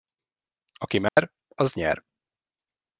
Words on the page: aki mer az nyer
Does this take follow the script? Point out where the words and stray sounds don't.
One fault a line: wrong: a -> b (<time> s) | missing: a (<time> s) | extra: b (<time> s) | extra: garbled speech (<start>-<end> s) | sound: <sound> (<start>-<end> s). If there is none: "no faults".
sound: dropout (1.1-1.2 s)